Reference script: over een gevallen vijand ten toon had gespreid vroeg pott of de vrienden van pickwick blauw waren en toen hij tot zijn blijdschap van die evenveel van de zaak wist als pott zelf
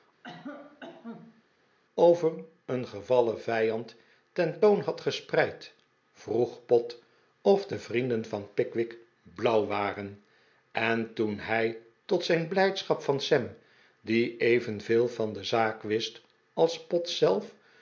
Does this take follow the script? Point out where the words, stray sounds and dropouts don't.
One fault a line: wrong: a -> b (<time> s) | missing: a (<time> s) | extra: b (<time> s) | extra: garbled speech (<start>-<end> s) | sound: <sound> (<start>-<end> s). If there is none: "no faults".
sound: cough (0.2-1.4 s)
extra: sam (13.2 s)